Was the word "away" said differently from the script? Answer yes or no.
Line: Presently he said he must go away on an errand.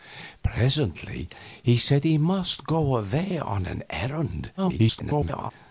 no